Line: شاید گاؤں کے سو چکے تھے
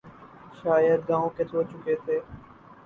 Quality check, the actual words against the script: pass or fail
pass